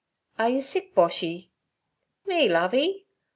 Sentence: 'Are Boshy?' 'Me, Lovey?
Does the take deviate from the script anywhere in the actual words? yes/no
yes